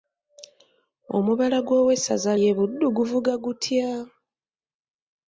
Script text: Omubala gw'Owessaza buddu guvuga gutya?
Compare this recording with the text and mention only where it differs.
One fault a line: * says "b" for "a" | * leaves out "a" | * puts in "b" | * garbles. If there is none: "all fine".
* puts in "ly'e"